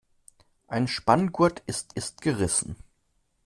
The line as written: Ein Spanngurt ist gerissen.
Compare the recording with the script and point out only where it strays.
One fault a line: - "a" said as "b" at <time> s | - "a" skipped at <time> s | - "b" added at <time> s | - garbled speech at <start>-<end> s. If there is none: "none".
- "ist" added at 2.0 s